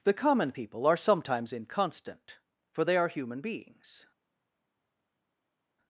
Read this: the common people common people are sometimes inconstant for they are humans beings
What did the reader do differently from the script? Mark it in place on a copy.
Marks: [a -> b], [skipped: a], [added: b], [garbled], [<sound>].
the common people [skipped: common people] are sometimes inconstant for they are [humans -> human] beings